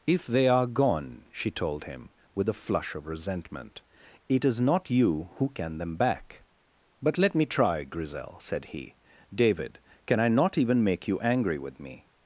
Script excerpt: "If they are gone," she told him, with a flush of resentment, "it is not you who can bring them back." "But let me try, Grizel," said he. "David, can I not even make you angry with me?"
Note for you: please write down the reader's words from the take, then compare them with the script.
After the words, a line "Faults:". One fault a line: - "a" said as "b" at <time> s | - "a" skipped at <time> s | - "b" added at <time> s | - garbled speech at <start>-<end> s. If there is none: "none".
"If they are gone," she told him, with a flush of resentment, "it is not you who can them back." "But let me try, Grizel," said he. "David, can I not even make you angry with me?"
Faults:
- "bring" skipped at 5.8 s